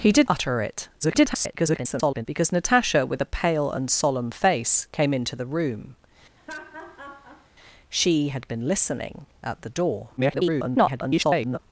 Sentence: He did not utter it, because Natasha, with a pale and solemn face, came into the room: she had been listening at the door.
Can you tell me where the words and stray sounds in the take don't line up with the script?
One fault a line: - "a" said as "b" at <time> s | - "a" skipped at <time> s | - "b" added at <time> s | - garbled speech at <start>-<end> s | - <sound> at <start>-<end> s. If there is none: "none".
- "not" skipped at 0.3 s
- garbled speech at 1.0-2.3 s
- laugh at 6.4-7.5 s
- garbled speech at 10.2-11.6 s